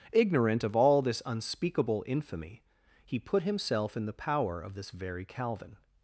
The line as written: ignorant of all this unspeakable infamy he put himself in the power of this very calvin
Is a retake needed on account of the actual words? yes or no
no